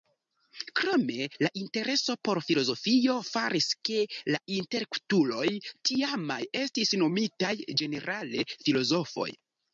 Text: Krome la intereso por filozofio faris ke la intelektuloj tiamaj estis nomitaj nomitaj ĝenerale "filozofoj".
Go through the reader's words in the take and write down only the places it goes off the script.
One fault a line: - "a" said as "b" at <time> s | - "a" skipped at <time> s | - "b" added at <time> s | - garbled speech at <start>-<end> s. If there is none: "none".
- "nomitaj" skipped at 7.5 s